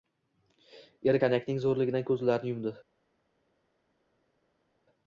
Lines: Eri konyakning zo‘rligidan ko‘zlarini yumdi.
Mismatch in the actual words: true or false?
false